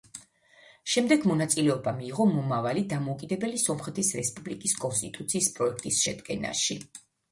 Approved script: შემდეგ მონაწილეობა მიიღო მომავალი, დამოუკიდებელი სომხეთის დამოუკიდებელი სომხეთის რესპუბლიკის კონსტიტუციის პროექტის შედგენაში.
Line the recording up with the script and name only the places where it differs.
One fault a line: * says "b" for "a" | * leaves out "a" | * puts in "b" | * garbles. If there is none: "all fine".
* leaves out "დამოუკიდებელი სომხეთის"